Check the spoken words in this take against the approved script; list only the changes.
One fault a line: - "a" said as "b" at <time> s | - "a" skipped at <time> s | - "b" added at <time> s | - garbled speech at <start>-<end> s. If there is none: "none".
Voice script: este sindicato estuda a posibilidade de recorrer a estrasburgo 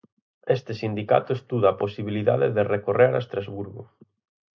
none